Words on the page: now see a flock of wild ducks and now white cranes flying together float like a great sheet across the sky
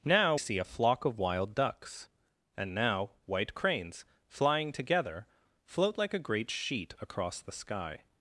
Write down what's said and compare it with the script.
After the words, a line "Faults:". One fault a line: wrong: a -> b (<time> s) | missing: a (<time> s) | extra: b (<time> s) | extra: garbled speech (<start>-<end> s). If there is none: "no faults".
now see a flock of wild ducks and now white cranes flying together float like a great sheet across the sky
Faults:
no faults